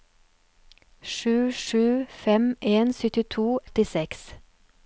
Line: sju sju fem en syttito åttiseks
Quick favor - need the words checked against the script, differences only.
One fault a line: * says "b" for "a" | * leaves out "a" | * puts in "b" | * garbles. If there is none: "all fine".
all fine